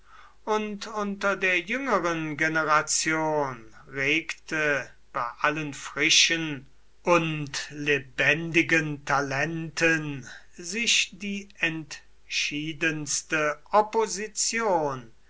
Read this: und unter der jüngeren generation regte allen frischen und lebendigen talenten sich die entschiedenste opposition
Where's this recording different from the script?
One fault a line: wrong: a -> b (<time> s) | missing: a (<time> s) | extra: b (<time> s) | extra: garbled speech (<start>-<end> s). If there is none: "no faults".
extra: bei (5.1 s)